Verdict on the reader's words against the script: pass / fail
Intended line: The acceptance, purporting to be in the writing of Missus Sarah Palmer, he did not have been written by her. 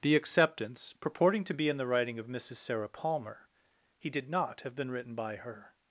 pass